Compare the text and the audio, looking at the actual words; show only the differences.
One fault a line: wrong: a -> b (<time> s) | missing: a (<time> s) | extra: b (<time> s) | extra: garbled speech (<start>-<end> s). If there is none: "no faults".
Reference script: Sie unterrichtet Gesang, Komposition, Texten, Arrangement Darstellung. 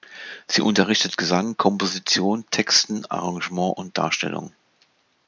extra: und (3.8 s)